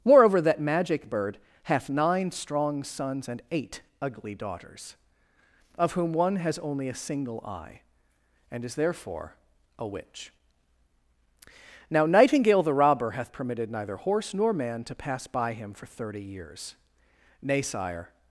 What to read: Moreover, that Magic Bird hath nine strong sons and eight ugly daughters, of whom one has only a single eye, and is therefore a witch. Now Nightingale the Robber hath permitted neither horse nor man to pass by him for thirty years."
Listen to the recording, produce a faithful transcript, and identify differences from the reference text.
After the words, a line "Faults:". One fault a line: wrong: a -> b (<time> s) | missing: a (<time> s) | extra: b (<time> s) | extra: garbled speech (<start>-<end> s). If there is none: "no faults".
Moreover, that Magic Bird hath nine strong sons and eight ugly daughters, of whom one has only a single eye, and is therefore a witch. Now Nightingale the Robber hath permitted neither horse nor man to pass by him for thirty years." "Nay, sire
Faults:
extra: Nay sire (17.4 s)